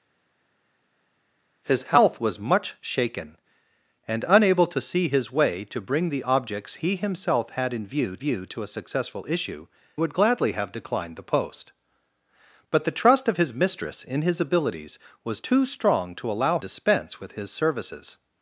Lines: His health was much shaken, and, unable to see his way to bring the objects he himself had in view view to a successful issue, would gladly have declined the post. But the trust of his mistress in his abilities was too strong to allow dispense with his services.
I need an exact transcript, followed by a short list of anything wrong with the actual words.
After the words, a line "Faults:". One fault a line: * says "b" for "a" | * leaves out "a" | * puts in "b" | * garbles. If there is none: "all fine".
His health was much shaken, and, unable to see his way to bring the objects he himself had in view view to a successful issue, would gladly have declined the post. But the trust of his mistress in his abilities was too strong to allow dispense with his services.
Faults:
all fine